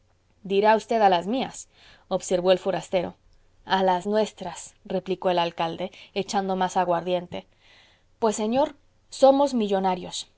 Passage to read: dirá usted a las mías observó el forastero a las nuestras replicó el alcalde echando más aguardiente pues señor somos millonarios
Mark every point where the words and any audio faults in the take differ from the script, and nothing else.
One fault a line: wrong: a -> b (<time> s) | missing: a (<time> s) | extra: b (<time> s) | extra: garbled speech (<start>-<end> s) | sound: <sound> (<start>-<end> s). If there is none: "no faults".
no faults